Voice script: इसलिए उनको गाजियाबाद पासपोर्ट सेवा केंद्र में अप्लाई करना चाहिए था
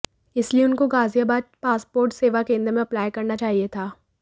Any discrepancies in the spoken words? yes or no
no